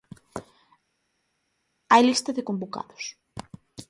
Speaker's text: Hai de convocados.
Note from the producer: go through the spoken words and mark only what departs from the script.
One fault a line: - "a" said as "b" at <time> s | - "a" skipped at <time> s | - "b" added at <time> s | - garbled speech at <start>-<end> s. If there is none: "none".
- "lista" added at 2.1 s